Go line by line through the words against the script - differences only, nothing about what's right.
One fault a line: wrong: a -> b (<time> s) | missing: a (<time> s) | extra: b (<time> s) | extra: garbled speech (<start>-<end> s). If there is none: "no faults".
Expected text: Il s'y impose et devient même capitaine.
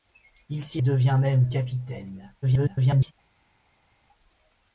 missing: impose (0.8 s)
extra: garbled speech (2.4-3.1 s)